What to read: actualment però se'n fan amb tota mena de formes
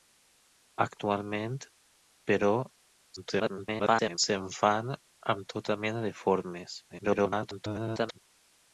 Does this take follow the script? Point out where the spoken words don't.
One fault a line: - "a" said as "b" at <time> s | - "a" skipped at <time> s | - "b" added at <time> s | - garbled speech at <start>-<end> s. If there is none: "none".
- garbled speech at 3.2-4.2 s
- garbled speech at 6.9-8.2 s